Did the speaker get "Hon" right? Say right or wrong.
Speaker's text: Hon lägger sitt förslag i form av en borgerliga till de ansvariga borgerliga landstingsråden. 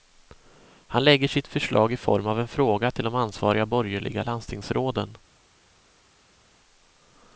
wrong